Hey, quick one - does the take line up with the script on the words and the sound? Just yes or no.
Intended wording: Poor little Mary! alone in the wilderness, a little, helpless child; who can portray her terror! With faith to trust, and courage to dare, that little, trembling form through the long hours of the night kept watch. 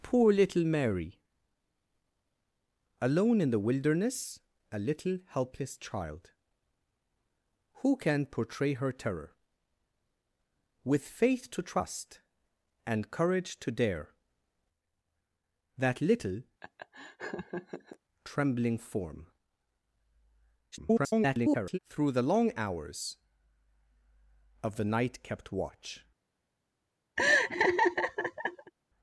no